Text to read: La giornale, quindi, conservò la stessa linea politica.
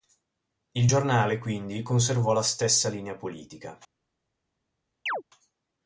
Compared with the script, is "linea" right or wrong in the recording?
right